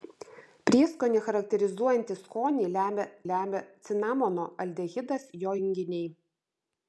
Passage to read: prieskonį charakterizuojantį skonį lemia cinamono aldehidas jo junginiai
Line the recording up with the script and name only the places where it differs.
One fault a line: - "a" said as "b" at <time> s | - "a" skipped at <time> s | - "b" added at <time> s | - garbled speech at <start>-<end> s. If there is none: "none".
- "lemia" added at 3.3 s